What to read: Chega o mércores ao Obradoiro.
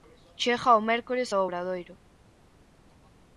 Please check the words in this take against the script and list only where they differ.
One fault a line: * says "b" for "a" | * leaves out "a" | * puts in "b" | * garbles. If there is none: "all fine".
all fine